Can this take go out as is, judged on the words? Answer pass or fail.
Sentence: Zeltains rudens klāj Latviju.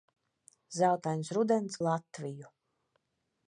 fail